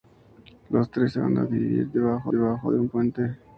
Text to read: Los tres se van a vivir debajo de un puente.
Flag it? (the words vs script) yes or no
yes